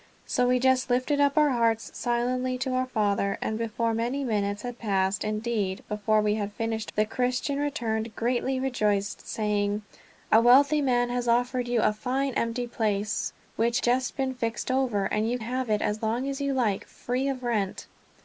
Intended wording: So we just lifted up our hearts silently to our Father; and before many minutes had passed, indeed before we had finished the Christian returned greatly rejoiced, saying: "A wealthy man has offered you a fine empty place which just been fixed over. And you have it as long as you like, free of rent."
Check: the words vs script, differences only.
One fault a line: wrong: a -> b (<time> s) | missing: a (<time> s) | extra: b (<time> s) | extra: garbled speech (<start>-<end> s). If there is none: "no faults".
no faults